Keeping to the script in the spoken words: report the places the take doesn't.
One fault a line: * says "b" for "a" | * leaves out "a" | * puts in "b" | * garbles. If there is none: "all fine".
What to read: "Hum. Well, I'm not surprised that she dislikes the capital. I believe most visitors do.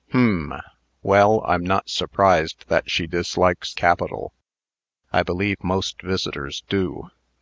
* leaves out "the"